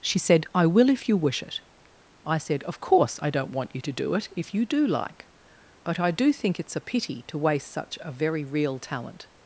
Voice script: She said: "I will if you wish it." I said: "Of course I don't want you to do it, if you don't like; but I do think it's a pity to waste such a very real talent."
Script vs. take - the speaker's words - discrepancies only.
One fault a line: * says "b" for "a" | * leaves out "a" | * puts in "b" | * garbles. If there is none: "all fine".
* says "do" for "don't"